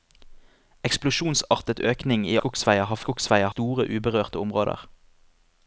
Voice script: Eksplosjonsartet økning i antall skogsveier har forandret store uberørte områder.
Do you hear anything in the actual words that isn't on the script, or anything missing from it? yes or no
yes